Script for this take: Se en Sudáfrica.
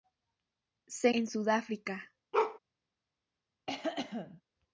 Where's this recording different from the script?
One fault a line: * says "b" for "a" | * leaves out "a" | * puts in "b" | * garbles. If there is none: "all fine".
all fine